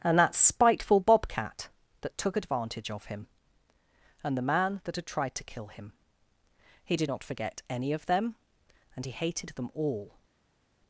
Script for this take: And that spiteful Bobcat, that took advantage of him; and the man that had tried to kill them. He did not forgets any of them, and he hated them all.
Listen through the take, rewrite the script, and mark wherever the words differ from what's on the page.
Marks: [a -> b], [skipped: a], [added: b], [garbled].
And that spiteful Bobcat, that took advantage of him; and the man that had tried to kill [them. -> him] He did not [forgets -> forget] any of them, and he hated them all.